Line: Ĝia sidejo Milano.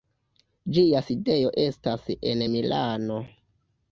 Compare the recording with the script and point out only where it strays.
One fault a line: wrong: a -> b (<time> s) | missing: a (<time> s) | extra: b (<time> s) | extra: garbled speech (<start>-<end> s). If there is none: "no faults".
extra: estas en (1.7 s)